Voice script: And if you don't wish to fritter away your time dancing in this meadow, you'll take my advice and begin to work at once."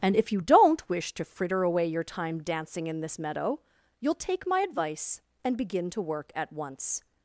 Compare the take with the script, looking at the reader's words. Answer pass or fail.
pass